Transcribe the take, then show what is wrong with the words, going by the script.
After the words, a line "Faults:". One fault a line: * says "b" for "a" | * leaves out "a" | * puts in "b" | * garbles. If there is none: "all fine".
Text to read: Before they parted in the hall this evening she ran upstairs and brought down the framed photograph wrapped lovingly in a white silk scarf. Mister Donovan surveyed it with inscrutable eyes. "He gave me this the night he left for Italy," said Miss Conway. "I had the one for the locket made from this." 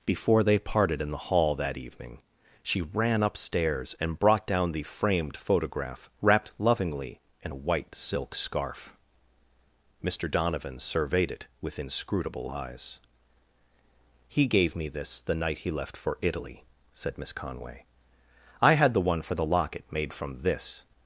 Before they parted in the hall that evening she ran upstairs and brought down the framed photograph wrapped lovingly in a white silk scarf. Mister Donovan surveyed it with inscrutable eyes. "He gave me this the night he left for Italy," said Miss Conway. "I had the one for the locket made from this."
Faults:
* says "that" for "this"